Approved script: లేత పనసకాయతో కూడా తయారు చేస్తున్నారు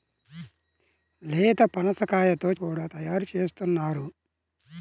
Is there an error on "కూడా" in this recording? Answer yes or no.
no